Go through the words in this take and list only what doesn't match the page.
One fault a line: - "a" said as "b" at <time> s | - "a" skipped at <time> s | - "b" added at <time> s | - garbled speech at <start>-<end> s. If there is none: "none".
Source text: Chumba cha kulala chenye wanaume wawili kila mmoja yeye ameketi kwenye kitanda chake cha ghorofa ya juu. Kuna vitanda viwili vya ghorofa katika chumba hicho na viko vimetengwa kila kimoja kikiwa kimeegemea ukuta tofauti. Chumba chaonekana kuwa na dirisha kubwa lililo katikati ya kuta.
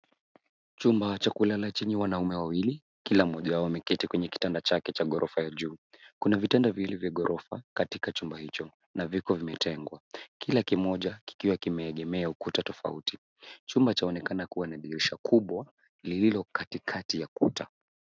- "yeye" said as "wao" at 3.5 s